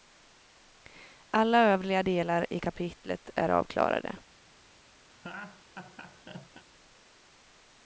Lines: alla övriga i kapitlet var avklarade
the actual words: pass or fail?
fail